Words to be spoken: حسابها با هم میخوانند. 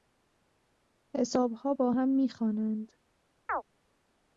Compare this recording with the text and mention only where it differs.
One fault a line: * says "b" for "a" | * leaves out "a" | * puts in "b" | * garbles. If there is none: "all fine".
all fine